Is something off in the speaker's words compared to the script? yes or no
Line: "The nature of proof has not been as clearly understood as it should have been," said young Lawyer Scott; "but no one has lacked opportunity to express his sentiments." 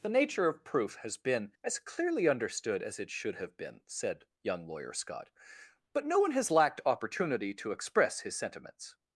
yes